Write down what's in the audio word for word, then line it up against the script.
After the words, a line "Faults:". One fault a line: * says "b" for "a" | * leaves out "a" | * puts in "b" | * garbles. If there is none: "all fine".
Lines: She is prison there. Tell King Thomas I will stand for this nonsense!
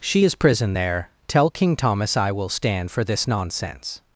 She is prison there. Tell King Thomas I will stand for this nonsense!
Faults:
all fine